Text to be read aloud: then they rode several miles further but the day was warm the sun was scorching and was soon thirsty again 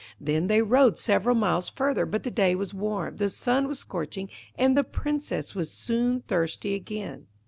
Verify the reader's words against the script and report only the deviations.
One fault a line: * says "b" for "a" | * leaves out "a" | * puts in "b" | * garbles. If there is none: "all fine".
* puts in "the princess"